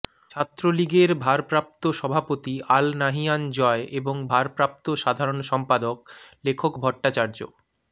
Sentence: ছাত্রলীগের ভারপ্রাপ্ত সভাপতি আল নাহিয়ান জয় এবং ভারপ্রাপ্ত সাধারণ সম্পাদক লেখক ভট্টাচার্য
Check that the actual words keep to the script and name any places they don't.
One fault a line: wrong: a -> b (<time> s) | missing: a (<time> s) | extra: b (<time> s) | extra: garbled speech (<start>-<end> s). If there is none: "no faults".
no faults